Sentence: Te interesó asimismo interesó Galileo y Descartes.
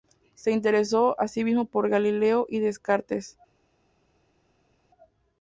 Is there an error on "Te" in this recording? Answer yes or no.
yes